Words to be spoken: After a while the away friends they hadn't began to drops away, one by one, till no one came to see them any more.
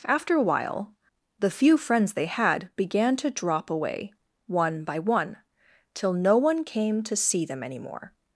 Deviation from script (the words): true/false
true